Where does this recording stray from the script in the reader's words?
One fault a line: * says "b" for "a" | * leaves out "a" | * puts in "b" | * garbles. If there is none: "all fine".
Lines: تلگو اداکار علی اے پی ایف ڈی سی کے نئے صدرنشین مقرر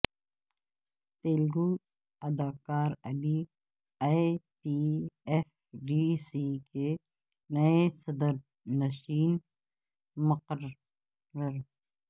all fine